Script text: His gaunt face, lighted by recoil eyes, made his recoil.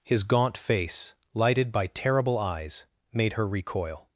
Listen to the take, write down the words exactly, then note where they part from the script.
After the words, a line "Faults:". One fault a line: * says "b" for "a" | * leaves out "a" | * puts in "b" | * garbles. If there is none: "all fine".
His gaunt face, lighted by terrible eyes, made her recoil.
Faults:
* says "terrible" for "recoil"
* says "her" for "his"